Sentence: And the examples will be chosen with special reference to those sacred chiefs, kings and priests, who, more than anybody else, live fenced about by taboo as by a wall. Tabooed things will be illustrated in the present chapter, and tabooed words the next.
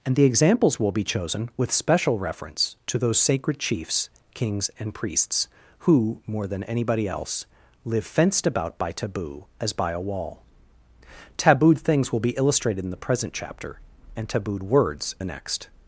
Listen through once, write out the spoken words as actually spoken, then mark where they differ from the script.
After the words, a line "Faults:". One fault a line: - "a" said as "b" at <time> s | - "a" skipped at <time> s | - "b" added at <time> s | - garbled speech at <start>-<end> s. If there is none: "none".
And the examples will be chosen with special reference to those sacred chiefs, kings and priests, who, more than anybody else, live fenced about by taboo as by a wall. Tabooed things will be illustrated in the present chapter, and tabooed words the next.
Faults:
none